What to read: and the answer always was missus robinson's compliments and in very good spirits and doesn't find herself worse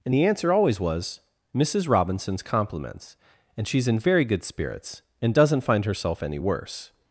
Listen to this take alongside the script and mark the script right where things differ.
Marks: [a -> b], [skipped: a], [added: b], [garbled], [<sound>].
and the answer always was missus robinson's compliments and [added: she's] in very good spirits and doesn't find herself [added: any] worse